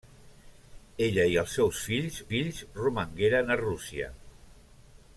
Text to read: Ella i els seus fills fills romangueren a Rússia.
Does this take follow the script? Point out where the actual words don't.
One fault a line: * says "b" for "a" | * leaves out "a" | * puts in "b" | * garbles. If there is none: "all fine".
all fine